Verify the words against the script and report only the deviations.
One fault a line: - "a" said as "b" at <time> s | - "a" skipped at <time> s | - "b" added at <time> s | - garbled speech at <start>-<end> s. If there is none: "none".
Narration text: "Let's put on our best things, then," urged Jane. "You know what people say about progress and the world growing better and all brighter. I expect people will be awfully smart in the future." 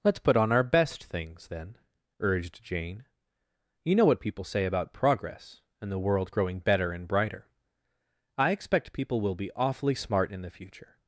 - "all" skipped at 7.0 s